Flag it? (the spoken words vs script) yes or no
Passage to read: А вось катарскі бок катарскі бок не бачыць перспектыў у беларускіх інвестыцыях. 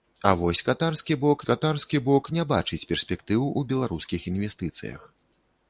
no